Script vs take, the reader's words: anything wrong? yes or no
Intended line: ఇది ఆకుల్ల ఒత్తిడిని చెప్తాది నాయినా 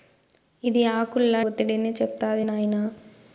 no